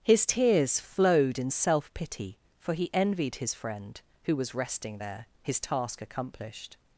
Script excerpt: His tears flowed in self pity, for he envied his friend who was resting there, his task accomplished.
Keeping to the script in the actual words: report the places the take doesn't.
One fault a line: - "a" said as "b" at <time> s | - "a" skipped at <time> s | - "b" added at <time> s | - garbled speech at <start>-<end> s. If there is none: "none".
none